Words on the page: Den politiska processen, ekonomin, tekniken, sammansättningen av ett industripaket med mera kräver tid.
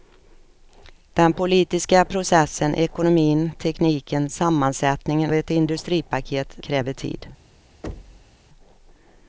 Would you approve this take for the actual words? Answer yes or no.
no